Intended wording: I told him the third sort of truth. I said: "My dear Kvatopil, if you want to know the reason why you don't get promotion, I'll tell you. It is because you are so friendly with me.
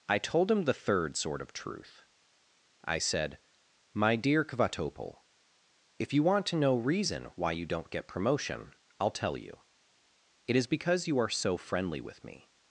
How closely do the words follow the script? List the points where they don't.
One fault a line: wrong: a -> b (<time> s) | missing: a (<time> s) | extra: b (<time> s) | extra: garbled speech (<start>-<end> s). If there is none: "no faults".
missing: the (6.8 s)